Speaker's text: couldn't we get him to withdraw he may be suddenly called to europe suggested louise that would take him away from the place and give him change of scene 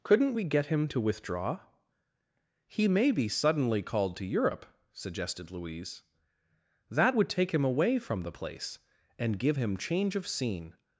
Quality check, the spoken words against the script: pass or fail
pass